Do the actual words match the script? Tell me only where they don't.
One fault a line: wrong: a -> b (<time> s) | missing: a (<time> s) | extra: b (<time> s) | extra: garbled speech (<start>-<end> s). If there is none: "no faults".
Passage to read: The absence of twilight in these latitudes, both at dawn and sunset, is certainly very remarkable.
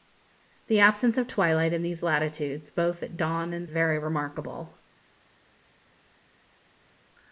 missing: sunset is certainly (3.7 s)